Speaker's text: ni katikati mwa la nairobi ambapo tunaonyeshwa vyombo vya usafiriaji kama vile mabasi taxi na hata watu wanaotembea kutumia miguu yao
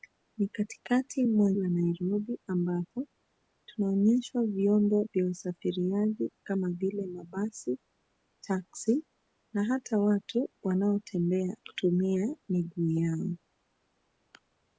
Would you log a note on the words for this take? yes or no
no